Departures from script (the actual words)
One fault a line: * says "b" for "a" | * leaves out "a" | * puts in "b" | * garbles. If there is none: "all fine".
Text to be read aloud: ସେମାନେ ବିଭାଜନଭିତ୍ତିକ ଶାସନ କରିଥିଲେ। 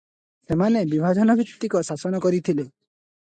all fine